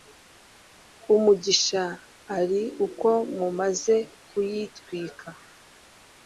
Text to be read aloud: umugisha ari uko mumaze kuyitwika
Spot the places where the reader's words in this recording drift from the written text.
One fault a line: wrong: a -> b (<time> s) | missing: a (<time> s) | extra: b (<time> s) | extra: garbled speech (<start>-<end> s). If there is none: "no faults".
no faults